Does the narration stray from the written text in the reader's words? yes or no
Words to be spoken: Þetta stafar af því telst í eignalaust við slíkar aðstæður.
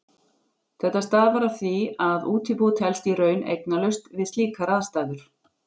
yes